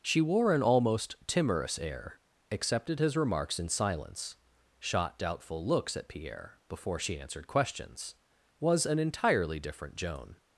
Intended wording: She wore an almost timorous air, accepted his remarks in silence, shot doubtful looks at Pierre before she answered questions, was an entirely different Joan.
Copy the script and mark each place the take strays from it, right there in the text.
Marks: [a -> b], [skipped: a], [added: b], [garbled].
She wore an almost timorous air, accepted his remarks in silence, shot doubtful looks at Pierre before she answered questions, was an entirely different Joan.